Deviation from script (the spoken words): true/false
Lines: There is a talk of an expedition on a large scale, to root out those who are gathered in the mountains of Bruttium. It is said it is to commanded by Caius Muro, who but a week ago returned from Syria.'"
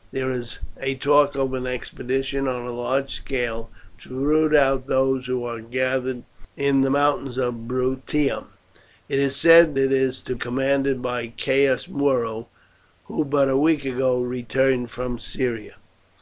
false